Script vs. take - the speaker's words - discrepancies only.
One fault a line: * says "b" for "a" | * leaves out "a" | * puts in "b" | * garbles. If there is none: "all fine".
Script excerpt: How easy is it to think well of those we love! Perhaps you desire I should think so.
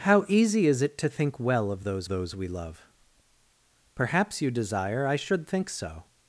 * puts in "those"